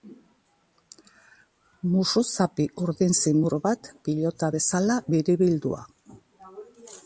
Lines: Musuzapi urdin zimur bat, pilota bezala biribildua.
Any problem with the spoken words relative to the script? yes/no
no